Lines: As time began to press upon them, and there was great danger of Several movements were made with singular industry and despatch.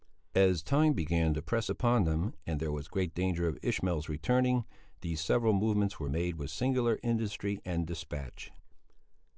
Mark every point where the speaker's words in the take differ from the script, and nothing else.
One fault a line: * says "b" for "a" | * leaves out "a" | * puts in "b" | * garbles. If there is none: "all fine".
* puts in "Ishmael's returning these"